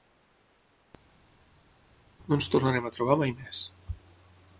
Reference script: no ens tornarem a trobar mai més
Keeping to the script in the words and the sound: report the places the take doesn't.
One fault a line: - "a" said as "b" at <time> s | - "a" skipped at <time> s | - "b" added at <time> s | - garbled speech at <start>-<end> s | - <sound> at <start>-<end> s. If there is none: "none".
none